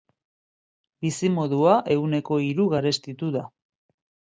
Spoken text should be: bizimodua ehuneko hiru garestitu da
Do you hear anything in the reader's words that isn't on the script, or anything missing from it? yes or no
no